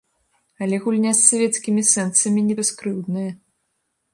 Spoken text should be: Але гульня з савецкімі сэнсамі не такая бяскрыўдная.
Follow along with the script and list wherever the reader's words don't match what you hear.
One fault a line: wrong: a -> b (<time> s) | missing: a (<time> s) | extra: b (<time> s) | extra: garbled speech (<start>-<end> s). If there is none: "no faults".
missing: такая (2.5 s)